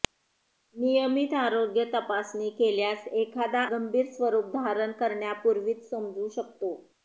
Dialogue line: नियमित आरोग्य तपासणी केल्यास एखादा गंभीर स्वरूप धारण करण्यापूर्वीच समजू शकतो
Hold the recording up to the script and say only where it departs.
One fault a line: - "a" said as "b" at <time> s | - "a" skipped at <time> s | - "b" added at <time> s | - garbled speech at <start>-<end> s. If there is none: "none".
none